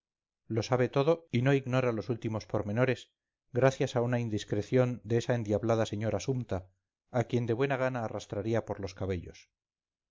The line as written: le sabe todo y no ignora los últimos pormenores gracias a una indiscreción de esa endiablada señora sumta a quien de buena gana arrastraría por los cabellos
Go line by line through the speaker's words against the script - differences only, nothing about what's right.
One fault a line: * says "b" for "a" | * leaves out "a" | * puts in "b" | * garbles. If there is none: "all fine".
* says "lo" for "le"